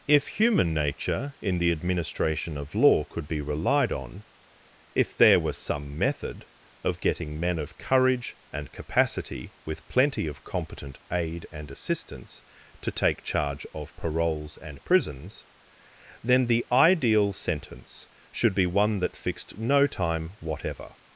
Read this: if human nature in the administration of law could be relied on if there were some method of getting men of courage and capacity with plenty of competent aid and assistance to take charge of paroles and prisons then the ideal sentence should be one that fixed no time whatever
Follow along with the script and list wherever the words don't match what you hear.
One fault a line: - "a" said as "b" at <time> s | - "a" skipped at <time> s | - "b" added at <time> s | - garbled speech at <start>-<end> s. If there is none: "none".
none